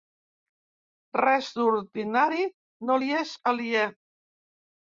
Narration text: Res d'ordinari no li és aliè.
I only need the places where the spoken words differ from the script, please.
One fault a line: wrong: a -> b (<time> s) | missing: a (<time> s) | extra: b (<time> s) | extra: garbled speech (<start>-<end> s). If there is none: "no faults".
no faults